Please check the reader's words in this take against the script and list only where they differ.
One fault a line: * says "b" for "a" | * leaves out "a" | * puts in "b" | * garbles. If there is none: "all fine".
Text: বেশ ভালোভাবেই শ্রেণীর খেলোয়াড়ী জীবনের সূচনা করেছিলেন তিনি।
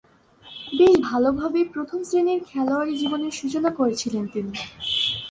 * puts in "প্রথম"